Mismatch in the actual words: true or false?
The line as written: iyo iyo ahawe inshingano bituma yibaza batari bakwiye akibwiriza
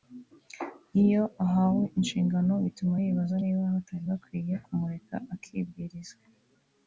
true